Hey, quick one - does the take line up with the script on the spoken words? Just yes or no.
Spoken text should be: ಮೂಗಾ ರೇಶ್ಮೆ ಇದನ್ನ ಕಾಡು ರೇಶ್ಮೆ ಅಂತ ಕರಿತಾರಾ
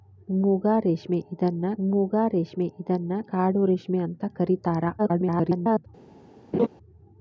no